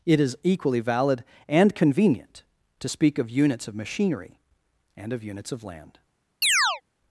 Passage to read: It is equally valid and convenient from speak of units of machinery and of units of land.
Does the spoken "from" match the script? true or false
false